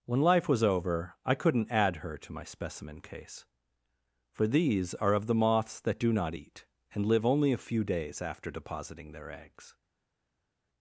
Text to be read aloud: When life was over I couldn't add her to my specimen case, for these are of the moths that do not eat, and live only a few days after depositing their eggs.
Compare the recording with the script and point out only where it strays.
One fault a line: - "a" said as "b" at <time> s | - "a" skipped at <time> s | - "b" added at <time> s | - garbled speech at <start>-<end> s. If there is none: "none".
none